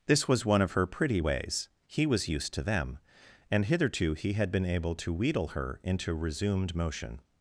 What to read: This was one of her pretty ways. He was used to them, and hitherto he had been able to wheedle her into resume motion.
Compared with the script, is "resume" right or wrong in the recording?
wrong